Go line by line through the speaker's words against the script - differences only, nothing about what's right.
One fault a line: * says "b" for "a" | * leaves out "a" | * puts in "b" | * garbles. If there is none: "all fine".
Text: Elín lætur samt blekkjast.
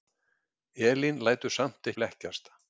all fine